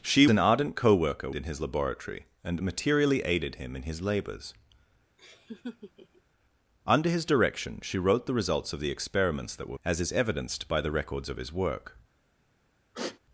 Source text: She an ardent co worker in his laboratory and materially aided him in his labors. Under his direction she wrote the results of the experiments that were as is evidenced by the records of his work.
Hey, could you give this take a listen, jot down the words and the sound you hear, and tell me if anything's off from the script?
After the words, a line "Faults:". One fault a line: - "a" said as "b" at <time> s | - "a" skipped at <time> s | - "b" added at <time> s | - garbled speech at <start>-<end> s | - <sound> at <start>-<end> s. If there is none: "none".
She an ardent co worker in his laboratory and materially aided him in his labors. Under his direction she wrote the results of the experiments that were as is evidenced by the records of his work.
Faults:
- laugh at 5.2-6.2 s
- sigh at 12.9-13.2 s